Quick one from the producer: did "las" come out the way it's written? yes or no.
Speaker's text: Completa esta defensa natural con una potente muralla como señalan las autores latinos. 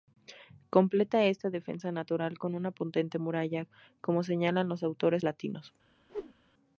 no